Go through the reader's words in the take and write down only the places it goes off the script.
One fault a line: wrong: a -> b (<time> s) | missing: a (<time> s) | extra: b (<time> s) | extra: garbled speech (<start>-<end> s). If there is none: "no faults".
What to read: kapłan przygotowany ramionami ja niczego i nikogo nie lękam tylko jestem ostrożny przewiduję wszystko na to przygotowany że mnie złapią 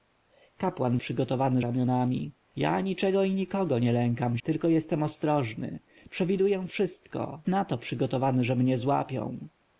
no faults